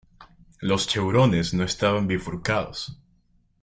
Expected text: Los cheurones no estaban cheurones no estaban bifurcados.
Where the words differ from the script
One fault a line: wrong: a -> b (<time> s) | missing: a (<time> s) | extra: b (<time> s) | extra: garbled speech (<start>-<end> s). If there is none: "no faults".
missing: cheurones no estaban (2.1 s)